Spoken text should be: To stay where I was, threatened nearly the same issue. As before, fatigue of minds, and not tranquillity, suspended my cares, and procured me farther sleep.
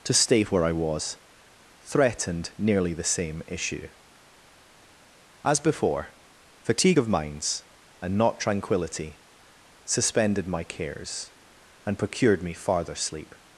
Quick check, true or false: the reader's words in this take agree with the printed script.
true